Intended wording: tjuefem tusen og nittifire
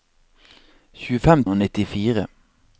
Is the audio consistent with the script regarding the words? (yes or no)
no